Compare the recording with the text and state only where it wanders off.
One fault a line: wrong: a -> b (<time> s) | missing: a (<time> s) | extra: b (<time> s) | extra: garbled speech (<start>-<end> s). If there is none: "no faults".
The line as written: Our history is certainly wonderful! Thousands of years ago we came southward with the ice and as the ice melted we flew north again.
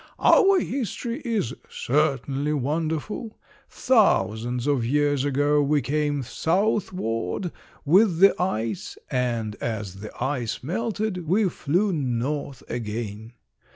no faults